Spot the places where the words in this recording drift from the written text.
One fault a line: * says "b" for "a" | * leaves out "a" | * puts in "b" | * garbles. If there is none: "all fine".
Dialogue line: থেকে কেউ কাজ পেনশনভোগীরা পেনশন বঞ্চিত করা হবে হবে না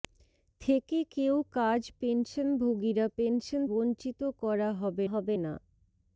all fine